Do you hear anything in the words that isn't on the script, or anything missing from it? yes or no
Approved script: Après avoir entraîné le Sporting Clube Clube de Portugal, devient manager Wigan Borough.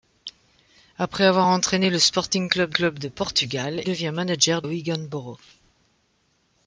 no